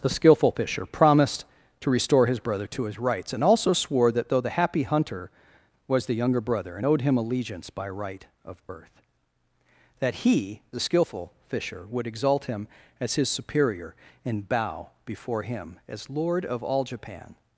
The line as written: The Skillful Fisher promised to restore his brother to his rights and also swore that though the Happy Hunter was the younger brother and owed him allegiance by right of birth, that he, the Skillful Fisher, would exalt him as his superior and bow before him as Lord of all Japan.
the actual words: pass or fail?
pass